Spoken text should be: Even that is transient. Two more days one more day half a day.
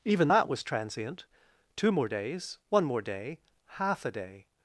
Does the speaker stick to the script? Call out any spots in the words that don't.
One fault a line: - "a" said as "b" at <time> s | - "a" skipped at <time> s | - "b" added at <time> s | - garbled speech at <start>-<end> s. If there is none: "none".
- "is" said as "was" at 0.5 s